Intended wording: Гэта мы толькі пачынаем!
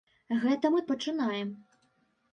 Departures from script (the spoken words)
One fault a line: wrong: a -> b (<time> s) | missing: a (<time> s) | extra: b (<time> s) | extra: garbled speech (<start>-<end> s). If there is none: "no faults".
missing: толькі (0.8 s)